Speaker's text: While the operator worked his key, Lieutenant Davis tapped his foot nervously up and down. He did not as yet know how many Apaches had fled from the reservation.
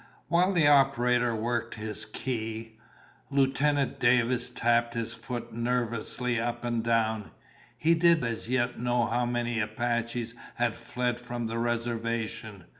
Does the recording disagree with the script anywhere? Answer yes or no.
yes